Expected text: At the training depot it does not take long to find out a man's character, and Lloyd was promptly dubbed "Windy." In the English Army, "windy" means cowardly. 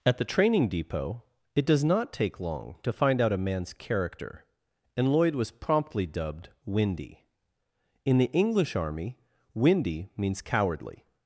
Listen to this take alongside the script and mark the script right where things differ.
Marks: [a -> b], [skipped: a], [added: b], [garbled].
At the training depot it does not take long to find out a man's character, and Lloyd was promptly dubbed "Windy." In the English Army, "windy" means cowardly.